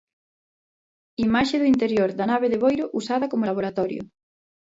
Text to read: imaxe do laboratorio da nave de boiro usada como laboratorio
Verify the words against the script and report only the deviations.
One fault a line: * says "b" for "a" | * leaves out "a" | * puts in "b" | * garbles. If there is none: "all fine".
* says "interior" for "laboratorio"